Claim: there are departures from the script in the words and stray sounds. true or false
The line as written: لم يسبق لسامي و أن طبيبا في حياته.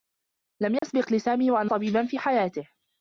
true